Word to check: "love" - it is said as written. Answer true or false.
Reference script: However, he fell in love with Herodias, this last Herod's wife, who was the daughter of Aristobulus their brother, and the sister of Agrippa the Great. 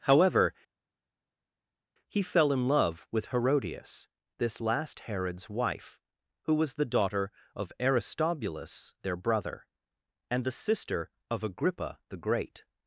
true